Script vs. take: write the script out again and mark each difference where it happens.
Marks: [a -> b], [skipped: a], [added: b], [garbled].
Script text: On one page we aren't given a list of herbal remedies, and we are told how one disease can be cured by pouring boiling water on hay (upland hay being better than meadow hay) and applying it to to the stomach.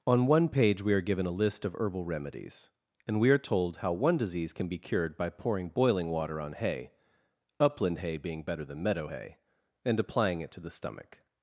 On one page we [aren't -> are] given a list of herbal remedies, and we are told how one disease can be cured by pouring boiling water on hay (upland hay being better than meadow hay) and applying it to [skipped: to] the stomach.